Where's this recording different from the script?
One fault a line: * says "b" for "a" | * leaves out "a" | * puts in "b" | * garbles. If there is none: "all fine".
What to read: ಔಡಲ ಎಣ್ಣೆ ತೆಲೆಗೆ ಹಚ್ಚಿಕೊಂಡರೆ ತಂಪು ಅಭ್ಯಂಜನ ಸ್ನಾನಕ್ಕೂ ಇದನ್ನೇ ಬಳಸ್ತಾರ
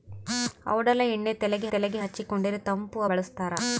* puts in "ತೆಲೆಗೆ"
* leaves out "ಅಭ್ಯಂಜನ ಸ್ನಾನಕ್ಕೂ ಇದನ್ನೇ"